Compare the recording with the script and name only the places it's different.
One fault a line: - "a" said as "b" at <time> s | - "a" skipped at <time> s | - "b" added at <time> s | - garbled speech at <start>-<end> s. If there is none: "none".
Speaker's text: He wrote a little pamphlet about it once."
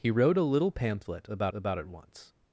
- "about" added at 1.5 s